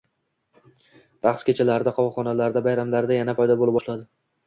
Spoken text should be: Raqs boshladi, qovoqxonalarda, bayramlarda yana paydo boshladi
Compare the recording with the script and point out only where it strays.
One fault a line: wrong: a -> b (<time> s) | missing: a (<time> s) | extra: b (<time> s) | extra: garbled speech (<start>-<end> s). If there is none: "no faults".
wrong: boshladi -> kechalarida (1.5 s)
extra: bo`la (3.6 s)